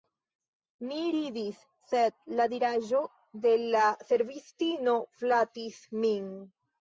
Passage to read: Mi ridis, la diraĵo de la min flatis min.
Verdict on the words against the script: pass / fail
fail